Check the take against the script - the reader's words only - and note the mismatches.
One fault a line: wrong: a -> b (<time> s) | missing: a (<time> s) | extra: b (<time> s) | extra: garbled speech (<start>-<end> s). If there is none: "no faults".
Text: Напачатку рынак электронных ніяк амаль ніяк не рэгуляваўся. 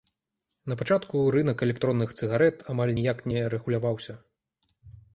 wrong: ніяк -> цыгарэт (2.2 s)